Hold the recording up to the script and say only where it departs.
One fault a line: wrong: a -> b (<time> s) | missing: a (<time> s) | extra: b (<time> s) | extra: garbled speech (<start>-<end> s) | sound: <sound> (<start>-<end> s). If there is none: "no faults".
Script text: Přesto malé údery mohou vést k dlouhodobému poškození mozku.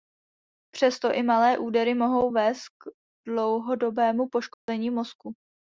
extra: i (1.1 s)
sound: dropout (4.5-4.7 s)